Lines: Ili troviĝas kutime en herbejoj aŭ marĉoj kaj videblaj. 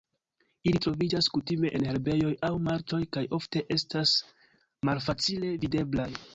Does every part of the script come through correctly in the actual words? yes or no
no